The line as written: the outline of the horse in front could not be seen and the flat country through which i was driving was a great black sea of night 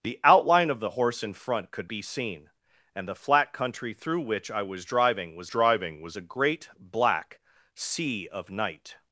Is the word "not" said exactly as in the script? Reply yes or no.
no